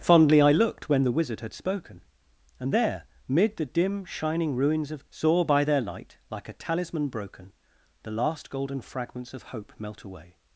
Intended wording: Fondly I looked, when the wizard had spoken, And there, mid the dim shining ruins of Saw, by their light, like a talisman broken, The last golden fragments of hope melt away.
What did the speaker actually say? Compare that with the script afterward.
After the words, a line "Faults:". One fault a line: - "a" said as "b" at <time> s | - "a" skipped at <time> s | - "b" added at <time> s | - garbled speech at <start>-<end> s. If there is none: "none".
Fondly I looked, when the wizard had spoken, And there, mid the dim shining ruins of Saw, by their light, like a talisman broken, The last golden fragments of hope melt away.
Faults:
none